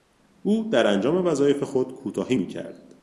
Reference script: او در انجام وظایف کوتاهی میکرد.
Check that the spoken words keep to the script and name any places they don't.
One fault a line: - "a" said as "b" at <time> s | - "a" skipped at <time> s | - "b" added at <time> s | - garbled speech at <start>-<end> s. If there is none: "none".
- "خود" added at 1.6 s